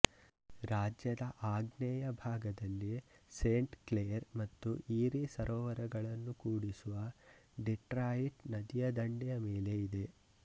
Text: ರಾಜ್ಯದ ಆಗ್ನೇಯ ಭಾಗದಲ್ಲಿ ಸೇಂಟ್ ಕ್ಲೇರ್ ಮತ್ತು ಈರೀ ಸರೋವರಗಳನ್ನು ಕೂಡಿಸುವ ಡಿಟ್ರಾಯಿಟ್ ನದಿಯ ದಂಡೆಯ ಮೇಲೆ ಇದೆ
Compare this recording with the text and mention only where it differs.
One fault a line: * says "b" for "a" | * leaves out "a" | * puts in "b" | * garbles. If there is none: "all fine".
all fine